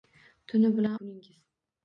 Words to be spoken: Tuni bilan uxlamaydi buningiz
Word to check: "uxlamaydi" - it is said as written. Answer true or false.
false